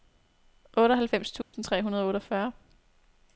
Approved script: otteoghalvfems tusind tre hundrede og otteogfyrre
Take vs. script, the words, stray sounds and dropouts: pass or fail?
fail